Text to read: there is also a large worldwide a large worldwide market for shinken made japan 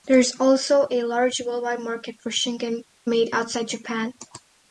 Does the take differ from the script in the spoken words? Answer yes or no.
yes